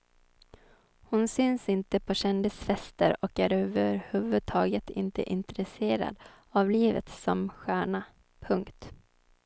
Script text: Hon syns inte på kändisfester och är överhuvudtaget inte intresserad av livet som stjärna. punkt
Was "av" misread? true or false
false